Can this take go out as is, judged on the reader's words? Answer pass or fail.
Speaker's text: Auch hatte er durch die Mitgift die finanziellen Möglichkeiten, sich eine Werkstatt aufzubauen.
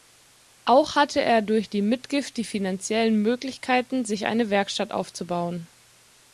pass